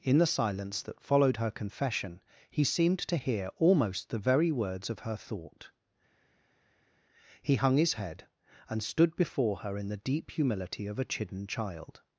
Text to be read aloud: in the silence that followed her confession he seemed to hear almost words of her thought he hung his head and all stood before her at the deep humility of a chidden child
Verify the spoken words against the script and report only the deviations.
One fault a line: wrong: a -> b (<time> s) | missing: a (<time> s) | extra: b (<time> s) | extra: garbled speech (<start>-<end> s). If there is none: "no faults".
extra: the very (4.1 s)
missing: all (8.8 s)
wrong: at -> in (9.8 s)